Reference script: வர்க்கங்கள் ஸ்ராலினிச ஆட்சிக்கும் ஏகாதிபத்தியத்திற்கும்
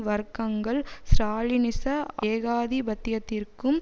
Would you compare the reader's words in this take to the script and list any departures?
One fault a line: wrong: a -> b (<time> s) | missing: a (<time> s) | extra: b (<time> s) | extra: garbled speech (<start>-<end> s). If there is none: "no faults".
missing: ஆட்சிக்கும் (1.9 s)